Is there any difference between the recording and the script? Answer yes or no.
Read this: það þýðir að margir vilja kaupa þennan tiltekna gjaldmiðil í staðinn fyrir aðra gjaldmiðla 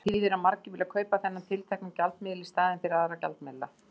no